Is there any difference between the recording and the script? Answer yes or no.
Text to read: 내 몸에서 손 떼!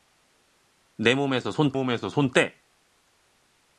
yes